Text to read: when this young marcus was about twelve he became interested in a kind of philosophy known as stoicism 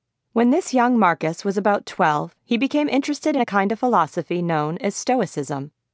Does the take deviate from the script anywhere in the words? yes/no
no